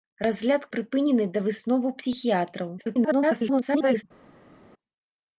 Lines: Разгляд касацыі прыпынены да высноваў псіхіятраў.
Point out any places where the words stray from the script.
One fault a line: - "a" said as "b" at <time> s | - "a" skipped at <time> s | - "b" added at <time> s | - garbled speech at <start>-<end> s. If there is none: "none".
- "касацыі" skipped at 0.6 s
- garbled speech at 2.8-4.0 s